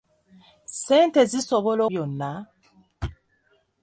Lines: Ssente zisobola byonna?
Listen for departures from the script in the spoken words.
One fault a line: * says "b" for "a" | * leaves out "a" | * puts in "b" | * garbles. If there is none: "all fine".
all fine